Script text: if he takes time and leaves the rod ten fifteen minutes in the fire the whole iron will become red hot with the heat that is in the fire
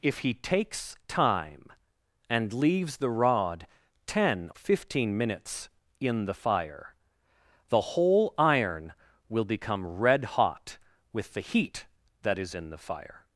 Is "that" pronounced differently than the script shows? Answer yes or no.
no